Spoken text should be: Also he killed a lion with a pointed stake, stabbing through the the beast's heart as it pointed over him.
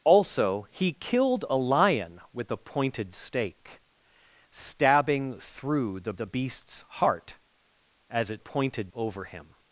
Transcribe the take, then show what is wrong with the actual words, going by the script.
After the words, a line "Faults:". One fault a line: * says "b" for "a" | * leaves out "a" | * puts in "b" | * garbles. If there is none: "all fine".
Also he killed a lion with a pointed stake, stabbing through the the beast's heart as it pointed over him.
Faults:
all fine